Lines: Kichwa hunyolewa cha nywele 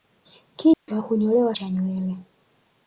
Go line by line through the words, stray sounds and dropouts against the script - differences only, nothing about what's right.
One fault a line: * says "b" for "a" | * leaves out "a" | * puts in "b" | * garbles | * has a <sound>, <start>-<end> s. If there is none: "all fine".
* has a dropout, 0.7-0.9 s